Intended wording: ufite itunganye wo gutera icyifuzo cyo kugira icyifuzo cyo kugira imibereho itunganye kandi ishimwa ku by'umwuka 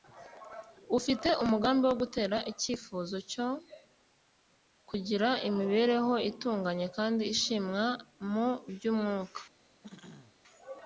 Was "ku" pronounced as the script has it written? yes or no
no